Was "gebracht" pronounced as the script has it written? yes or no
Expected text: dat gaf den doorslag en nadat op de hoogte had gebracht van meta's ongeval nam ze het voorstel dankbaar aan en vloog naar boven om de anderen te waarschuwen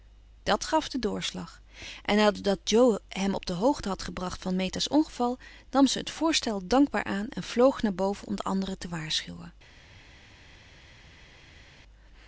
yes